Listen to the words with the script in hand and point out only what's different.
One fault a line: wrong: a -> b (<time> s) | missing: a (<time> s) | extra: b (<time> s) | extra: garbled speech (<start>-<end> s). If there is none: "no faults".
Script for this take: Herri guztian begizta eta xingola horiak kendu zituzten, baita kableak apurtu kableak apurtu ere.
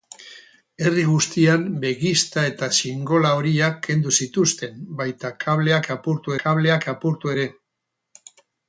no faults